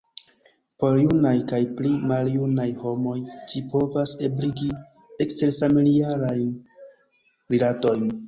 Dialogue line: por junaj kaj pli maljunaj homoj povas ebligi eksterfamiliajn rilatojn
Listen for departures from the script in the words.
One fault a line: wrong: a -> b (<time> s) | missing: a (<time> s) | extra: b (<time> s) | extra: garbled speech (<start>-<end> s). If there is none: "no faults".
extra: ĝi (3.5 s)